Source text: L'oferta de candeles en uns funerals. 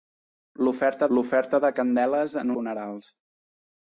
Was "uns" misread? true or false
true